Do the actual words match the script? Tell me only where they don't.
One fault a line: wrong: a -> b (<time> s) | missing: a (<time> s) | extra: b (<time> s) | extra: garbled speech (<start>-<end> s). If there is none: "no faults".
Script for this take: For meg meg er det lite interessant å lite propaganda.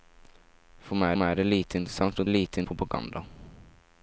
no faults